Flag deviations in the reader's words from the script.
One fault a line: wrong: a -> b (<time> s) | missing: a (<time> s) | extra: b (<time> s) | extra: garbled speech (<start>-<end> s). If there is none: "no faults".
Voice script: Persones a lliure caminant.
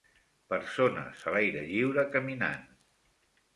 extra: l'aire (1.4 s)